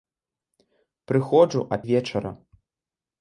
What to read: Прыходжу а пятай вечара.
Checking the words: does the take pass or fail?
fail